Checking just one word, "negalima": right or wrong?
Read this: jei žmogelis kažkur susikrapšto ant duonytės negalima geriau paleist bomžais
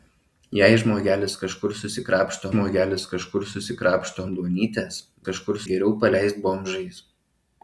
wrong